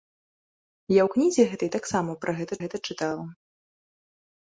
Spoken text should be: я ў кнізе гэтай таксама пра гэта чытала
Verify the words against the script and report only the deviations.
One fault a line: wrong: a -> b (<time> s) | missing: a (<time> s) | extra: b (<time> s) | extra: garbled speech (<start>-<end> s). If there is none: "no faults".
extra: гэта (2.6 s)